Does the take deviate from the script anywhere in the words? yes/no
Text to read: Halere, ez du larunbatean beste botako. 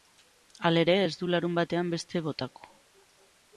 no